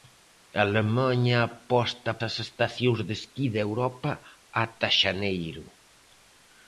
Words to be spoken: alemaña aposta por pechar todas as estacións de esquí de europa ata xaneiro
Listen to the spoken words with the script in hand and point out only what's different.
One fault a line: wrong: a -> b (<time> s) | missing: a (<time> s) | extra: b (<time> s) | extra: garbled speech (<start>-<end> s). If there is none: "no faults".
missing: por pechar todas (2.1 s)